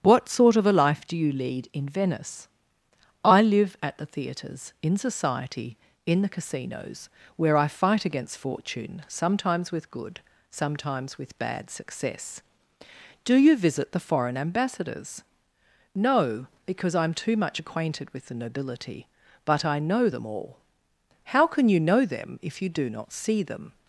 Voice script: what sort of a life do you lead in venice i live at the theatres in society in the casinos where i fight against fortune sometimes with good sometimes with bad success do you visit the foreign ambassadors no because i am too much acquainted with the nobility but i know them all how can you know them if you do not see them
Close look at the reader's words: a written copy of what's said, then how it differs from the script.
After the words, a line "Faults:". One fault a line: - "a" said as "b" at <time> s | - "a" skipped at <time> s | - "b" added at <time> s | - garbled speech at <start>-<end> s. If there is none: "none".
what sort of a life do you lead in venice i live at the theatres in society in the casinos where i fight against fortune sometimes with good sometimes with bad success do you visit the foreign ambassadors no because i am too much acquainted with the nobility but i know them all how can you know them if you do not see them
Faults:
none